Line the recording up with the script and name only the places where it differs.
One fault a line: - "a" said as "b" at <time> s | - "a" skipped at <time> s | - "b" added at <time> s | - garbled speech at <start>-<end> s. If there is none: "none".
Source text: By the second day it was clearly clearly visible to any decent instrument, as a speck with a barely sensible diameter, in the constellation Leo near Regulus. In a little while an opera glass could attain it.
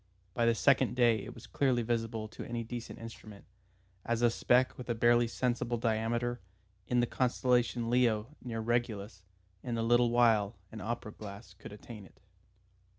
- "clearly" skipped at 1.8 s